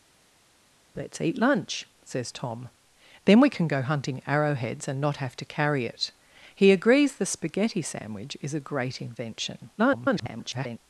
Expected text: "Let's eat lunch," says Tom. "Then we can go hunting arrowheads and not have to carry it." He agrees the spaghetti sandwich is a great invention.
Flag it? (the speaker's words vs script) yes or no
yes